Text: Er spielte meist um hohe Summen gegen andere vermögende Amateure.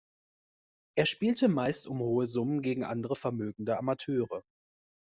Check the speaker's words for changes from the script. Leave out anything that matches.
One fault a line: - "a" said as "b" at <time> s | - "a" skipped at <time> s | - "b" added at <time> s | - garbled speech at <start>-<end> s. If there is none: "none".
none